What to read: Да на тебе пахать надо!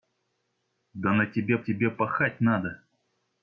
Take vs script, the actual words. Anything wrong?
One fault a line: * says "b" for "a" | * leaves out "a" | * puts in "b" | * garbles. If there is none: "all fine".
* puts in "тебе"